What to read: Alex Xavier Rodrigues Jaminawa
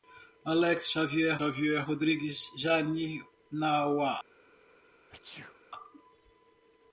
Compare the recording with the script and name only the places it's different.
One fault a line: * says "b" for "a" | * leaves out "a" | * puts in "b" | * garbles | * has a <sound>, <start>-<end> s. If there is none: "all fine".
* puts in "Xavier"
* has a sneeze, 5.1-5.6 s